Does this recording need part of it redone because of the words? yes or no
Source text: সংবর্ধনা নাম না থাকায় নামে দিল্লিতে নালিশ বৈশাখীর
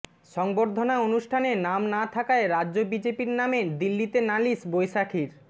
yes